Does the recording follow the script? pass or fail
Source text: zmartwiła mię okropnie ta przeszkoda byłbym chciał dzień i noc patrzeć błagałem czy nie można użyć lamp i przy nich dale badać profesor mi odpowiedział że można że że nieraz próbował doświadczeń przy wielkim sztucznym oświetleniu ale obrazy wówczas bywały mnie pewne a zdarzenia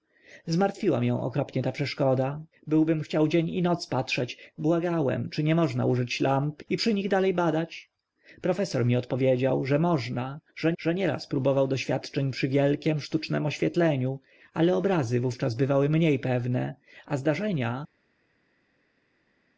pass